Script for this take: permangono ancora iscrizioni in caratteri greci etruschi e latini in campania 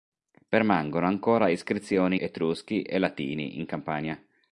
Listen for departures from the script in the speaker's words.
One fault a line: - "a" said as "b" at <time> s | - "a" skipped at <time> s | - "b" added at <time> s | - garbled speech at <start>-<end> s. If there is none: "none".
- "in caratteri greci" skipped at 2.1 s